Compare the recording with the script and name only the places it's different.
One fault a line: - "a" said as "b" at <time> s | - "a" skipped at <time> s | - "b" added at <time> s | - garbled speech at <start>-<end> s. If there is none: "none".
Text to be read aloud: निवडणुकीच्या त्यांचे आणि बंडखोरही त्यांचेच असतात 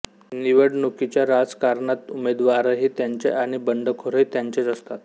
- "राजकारणात उमेदवारही" added at 1.3 s